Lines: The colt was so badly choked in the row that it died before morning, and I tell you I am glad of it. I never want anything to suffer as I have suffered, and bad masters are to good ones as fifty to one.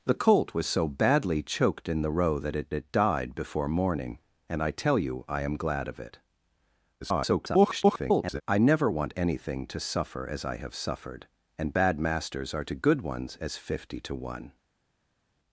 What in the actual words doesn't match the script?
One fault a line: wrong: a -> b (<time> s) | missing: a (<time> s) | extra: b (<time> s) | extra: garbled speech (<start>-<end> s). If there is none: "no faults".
extra: it (2.7 s)
extra: garbled speech (7.0-8.4 s)